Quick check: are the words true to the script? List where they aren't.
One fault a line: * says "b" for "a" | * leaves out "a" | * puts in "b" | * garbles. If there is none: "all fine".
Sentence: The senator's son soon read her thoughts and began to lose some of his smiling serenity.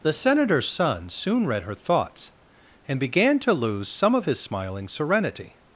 all fine